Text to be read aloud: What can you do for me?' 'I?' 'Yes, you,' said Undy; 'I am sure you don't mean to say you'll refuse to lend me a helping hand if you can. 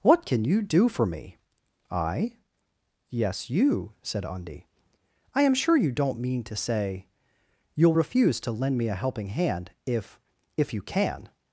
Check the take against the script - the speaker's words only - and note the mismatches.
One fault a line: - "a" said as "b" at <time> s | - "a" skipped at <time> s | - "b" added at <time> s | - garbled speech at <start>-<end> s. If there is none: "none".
- "if" added at 10.6 s